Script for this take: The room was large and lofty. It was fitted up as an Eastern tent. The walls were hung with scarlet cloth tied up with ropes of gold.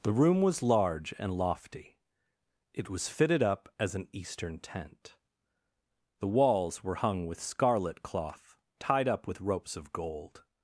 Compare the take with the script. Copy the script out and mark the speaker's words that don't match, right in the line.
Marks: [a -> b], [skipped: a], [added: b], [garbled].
The room was large and lofty. It was fitted up as an Eastern tent. The walls were hung with scarlet cloth tied up with ropes of gold.